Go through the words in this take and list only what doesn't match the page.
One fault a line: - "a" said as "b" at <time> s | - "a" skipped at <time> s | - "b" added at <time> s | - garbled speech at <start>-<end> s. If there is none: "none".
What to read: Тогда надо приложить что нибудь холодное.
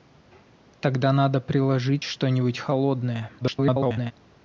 - garbled speech at 3.4-4.1 s